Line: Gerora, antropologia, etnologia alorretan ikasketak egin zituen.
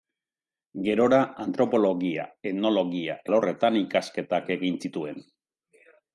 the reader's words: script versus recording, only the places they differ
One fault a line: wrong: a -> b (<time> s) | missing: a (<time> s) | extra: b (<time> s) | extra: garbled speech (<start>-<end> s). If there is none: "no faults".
no faults